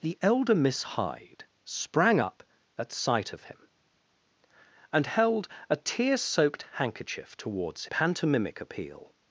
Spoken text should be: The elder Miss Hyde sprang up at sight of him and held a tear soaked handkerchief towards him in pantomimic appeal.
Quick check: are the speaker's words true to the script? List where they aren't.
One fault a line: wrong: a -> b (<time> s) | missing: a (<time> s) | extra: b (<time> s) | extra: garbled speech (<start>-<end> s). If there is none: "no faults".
missing: him in (7.9 s)